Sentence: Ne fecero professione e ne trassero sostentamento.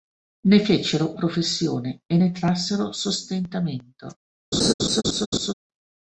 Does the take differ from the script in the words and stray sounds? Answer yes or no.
yes